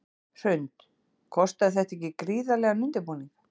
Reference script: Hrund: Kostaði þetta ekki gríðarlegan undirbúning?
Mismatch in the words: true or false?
false